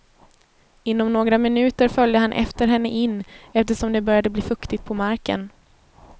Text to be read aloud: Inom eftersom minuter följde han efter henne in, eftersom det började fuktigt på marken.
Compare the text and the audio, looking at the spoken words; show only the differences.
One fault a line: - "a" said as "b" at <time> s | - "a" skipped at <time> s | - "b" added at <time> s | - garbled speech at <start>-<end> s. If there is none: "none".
- "eftersom" said as "några" at 1.1 s
- "bli" added at 4.3 s